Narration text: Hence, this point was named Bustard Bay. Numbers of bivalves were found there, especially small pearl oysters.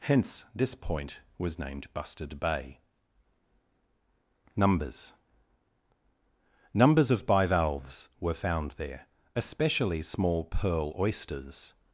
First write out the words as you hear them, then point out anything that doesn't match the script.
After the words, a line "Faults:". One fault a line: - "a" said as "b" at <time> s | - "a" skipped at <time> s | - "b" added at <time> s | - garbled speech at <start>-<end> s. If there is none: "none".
Hence, this point was named Bustard Bay. Numbers Numbers of bivalves were found there, especially small pearl oysters.
Faults:
- "Numbers" added at 6.7 s